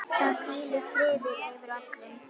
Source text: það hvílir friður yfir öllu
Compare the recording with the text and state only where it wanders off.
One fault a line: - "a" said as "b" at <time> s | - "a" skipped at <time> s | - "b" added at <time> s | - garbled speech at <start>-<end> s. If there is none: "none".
none